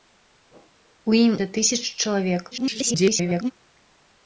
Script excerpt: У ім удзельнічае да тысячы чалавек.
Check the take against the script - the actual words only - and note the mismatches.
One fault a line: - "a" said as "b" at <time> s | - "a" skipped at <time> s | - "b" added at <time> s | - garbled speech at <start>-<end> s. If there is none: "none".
- "удзельнічае" skipped at 1.3 s
- garbled speech at 2.5-3.5 s